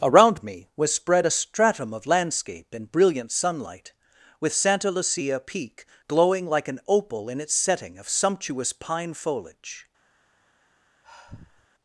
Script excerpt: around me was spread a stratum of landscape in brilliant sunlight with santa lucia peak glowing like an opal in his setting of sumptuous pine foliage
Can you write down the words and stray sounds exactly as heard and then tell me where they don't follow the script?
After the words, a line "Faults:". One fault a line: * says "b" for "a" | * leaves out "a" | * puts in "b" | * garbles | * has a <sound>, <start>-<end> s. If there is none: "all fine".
around me was spread a stratum of landscape in brilliant sunlight with santa lucia peak glowing like an opal in its setting of sumptuous pine foliage
Faults:
* says "its" for "his"
* has a sigh, 11.0-11.7 s